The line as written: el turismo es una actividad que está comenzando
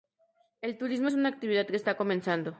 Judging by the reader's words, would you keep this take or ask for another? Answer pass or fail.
pass